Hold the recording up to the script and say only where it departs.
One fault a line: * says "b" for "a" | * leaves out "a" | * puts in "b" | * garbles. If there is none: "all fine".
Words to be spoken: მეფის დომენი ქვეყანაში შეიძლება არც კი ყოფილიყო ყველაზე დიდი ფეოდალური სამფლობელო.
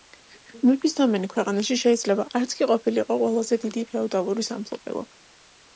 all fine